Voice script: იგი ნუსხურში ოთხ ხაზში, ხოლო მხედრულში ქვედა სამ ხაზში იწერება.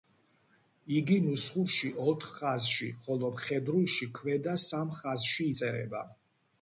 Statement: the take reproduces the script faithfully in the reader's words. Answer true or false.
true